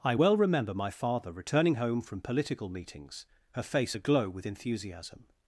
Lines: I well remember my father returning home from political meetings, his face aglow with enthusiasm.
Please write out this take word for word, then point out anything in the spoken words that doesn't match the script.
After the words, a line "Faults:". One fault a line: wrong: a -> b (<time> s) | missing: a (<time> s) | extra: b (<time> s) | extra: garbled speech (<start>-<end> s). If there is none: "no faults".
I well remember my father returning home from political meetings, her face aglow with enthusiasm.
Faults:
wrong: his -> her (3.5 s)